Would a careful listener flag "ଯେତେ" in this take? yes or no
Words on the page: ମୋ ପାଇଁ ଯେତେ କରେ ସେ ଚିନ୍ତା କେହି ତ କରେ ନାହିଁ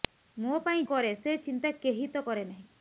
yes